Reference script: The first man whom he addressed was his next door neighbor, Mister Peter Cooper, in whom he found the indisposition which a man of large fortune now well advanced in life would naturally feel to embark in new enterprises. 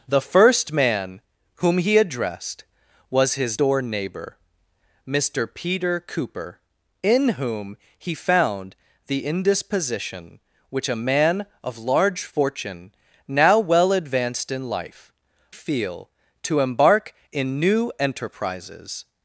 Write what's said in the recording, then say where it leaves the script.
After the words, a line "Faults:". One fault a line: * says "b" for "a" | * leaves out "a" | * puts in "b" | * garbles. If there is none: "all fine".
The first man whom he addressed was his door neighbor, Mister Peter Cooper, in whom he found the indisposition which a man of large fortune now well advanced in life feel to embark in new enterprises.
Faults:
* leaves out "next"
* leaves out "would naturally"